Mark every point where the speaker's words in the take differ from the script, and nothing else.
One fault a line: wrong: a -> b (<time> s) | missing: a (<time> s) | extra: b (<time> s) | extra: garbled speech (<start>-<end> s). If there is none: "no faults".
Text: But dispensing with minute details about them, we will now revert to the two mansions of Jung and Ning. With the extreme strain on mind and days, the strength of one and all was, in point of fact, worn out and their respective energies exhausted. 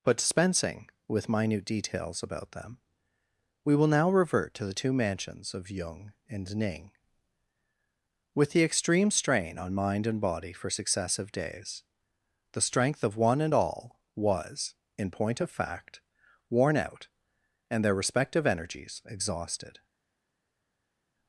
extra: body for successive (10.2 s)